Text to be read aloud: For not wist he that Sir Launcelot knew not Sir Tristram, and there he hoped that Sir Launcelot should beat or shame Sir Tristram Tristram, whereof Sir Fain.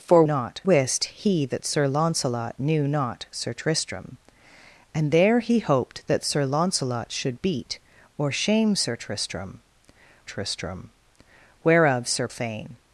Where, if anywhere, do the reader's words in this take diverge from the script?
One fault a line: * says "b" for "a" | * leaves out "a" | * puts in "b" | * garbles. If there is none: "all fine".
all fine